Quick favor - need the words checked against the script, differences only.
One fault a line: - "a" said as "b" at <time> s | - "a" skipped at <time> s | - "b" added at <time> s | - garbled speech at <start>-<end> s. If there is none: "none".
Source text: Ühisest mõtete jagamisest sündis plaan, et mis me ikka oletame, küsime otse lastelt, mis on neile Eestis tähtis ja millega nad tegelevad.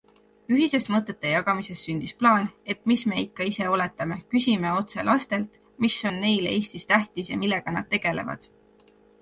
- "ise" added at 3.5 s